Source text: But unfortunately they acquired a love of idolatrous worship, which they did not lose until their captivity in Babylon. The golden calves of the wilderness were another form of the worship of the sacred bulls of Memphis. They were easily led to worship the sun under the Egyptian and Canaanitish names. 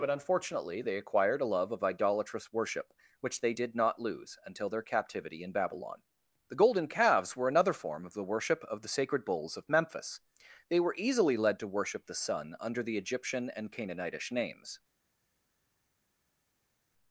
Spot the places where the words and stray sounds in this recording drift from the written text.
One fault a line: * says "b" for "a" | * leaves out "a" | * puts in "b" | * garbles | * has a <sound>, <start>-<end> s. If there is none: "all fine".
* leaves out "of the wilderness"